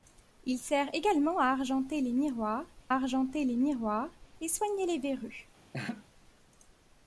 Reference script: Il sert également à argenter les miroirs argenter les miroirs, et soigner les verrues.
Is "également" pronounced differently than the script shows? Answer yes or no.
no